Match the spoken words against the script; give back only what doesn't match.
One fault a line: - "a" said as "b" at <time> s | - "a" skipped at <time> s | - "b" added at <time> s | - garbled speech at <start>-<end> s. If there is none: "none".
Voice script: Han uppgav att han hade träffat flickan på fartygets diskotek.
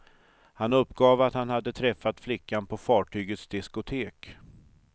none